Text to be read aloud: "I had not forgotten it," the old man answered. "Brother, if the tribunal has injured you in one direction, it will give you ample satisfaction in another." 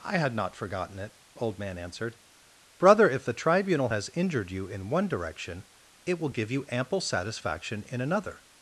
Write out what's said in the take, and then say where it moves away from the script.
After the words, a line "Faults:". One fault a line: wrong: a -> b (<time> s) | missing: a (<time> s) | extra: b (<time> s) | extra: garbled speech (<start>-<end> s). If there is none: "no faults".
"I had not forgotten it," old man answered. "Brother, if the tribunal has injured you in one direction, it will give you ample satisfaction in another."
Faults:
missing: the (1.1 s)